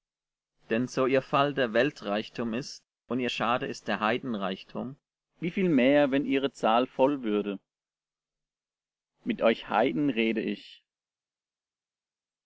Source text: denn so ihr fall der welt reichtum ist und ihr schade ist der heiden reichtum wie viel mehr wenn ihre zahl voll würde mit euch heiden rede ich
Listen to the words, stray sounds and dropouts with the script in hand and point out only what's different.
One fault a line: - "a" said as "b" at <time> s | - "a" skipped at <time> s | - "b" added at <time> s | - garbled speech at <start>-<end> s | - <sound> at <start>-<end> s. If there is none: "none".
none